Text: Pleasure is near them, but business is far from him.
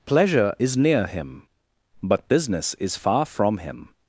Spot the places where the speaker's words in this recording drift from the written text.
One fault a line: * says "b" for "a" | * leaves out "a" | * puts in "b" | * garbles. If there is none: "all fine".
* says "him" for "them"